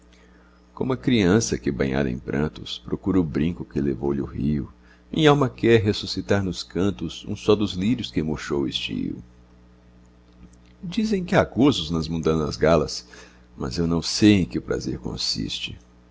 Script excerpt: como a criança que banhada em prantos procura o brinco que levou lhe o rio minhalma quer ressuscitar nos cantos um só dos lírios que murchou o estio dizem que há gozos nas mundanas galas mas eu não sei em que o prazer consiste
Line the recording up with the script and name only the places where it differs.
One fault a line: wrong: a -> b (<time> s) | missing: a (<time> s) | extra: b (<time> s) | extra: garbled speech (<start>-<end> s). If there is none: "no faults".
no faults